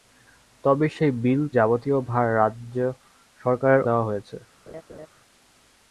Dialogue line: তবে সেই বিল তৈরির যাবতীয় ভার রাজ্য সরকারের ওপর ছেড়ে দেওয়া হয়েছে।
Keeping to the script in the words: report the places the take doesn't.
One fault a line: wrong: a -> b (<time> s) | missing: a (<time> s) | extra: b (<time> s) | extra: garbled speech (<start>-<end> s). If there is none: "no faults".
missing: তৈরির (1.4 s)
missing: ওপর ছেড়ে (3.8 s)